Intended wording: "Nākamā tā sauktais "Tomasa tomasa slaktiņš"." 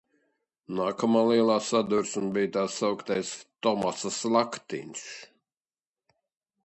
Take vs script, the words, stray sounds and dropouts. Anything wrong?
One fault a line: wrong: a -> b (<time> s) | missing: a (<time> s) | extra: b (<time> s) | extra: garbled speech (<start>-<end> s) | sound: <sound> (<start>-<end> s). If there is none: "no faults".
extra: lielā sadursme bija (1.3 s)
missing: tomasa (4.1 s)